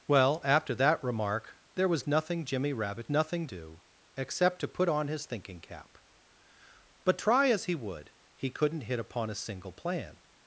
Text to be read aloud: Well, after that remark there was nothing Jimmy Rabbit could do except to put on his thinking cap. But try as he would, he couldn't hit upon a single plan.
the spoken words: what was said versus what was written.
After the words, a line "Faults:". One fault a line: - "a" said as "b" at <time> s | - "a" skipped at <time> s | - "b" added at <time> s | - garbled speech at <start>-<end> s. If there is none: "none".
Well, after that remark there was nothing Jimmy Rabbit nothing do except to put on his thinking cap. But try as he would, he couldn't hit upon a single plan.
Faults:
- "could" said as "nothing" at 3.1 s